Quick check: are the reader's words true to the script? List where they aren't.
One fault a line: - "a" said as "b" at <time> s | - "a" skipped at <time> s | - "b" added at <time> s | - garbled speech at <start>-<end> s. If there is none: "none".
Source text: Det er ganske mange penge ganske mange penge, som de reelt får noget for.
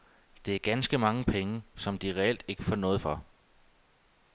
- "ganske mange penge" skipped at 1.6 s
- "ikke" added at 2.5 s